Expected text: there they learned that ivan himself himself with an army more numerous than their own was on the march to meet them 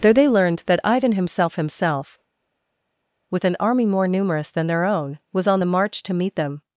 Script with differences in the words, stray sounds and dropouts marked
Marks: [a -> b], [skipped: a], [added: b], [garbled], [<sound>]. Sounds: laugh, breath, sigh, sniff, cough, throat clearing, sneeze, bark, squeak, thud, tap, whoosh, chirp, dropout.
there they learned that ivan himself himself with an army more numerous than their own was on the march to meet them